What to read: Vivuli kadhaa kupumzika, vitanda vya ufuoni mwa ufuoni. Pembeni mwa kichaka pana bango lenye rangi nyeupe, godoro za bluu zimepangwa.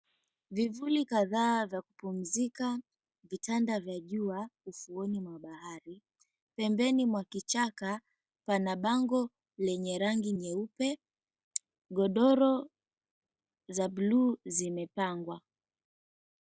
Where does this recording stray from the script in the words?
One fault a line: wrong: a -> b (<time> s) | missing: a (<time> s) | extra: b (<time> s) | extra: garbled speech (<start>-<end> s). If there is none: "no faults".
extra: vya (1.6 s)
extra: jua (4.0 s)
wrong: ufuoni -> bahari (5.4 s)